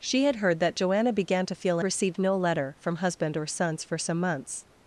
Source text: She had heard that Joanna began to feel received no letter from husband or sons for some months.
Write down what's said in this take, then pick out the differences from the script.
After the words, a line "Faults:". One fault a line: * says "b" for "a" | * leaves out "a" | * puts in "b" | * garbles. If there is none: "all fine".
She had heard that Joanna began to feel received no letter from husband or sons for some months.
Faults:
all fine